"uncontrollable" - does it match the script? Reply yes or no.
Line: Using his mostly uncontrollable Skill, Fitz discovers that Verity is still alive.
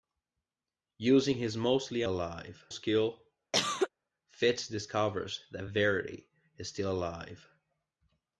no